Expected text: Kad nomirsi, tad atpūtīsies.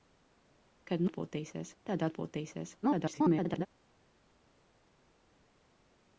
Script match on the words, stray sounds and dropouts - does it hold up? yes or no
no